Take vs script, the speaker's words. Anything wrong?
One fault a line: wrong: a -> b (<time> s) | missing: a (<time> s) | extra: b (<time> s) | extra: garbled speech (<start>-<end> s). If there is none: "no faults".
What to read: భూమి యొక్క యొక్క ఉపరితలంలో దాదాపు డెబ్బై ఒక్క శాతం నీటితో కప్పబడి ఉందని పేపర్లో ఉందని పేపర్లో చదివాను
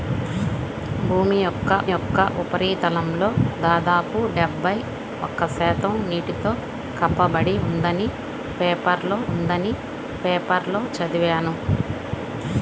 no faults